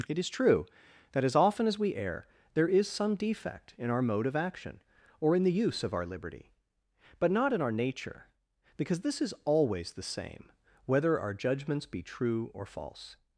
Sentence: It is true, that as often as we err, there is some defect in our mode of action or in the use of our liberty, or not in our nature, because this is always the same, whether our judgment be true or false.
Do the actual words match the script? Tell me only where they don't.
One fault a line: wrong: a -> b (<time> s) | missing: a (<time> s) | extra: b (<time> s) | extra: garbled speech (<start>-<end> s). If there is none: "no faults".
wrong: or -> but (7.2 s)
wrong: judgment -> judgments (11.3 s)